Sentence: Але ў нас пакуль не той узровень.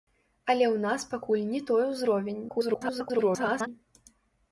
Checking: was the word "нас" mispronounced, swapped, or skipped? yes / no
no